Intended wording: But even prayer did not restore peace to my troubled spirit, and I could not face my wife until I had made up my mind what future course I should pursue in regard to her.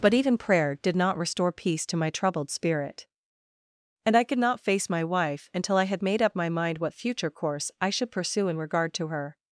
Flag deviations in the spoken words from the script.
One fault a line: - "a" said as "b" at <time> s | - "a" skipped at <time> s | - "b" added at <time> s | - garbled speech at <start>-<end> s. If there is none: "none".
none